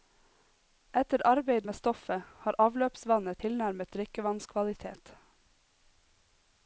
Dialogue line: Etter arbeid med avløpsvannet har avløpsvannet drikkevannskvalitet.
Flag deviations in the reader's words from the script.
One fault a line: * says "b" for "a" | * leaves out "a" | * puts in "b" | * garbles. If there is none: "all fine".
* says "stoffet" for "avløpsvannet"
* puts in "tilnærmet"